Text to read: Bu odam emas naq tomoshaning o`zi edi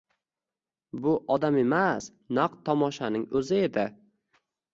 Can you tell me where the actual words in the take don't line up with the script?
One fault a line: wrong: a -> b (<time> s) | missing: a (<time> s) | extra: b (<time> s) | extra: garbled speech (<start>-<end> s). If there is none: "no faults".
no faults